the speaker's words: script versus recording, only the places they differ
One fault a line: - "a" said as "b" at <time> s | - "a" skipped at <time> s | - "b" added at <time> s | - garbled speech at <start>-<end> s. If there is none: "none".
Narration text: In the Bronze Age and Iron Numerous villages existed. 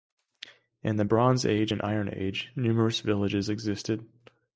- "Age" added at 2.1 s